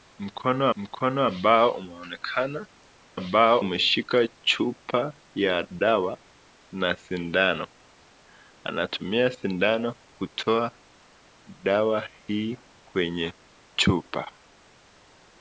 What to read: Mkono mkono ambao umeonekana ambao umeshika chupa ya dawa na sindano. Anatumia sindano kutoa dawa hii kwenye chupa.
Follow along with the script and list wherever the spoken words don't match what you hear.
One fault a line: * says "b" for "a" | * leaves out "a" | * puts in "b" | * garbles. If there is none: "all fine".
all fine